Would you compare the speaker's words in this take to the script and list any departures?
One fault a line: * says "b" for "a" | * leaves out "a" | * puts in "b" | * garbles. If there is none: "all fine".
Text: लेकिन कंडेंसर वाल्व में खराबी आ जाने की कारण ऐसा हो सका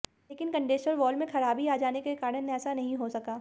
* says "के" for "की"
* puts in "नहीं"